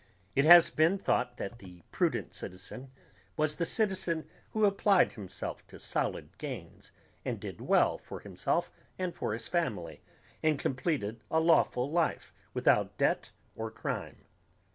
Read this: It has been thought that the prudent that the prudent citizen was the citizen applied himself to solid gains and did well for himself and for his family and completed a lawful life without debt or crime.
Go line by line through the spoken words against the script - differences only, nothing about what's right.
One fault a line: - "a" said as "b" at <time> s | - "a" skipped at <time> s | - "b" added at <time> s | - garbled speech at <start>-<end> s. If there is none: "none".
- "that the prudent" skipped at 2.3 s
- "who" added at 4.5 s